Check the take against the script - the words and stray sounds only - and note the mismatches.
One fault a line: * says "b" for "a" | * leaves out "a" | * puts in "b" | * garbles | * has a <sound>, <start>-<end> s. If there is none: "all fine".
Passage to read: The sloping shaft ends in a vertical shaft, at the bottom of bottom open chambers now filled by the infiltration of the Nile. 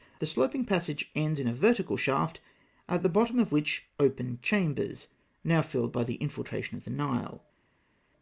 * says "passage" for "shaft"
* says "which" for "bottom"